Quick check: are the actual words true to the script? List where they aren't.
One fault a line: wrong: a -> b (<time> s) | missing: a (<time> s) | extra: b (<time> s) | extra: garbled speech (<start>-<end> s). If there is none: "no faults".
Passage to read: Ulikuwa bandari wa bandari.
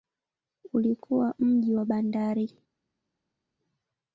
wrong: bandari -> mji (1.4 s)